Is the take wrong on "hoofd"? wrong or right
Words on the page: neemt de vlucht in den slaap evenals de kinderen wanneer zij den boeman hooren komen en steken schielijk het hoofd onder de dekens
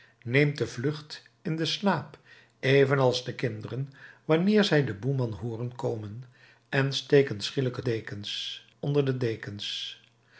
wrong